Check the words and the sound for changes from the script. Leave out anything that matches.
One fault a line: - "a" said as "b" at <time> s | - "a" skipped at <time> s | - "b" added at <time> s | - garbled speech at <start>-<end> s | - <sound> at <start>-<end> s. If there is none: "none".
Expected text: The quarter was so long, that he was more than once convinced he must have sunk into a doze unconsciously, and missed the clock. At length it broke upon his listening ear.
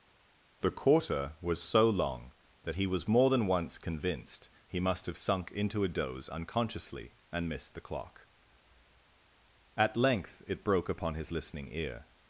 none